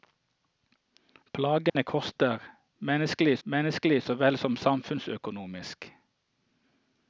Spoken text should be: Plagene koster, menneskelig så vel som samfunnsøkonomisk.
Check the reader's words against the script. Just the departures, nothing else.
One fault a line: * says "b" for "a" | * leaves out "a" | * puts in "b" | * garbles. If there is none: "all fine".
* puts in "menneskelig"